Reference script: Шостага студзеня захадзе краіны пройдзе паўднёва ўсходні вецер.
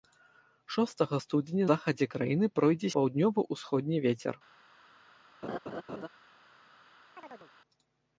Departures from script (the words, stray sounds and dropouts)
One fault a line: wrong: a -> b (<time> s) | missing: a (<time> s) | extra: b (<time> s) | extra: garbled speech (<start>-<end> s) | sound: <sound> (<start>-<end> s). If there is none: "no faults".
sound: laugh (5.4-6.1 s)
sound: chirp (7.2-7.5 s)